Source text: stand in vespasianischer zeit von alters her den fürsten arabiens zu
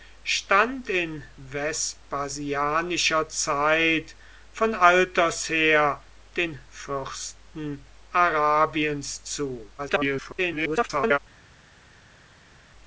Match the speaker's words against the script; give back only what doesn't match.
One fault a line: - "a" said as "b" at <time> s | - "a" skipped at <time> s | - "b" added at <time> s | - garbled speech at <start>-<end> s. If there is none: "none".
- garbled speech at 9.8-11.2 s